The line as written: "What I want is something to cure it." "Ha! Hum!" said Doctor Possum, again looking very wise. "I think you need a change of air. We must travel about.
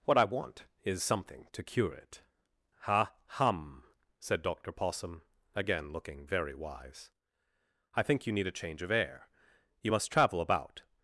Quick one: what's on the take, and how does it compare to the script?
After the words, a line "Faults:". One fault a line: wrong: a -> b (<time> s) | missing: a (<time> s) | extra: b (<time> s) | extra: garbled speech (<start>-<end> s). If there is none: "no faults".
"What I want is something to cure it." "Ha! Hum!" said Doctor Possum, again looking very wise. "I think you need a change of air. You must travel about.
Faults:
wrong: We -> You (9.8 s)